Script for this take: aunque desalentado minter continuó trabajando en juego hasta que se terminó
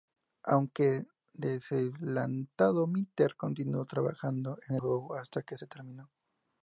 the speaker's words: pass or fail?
pass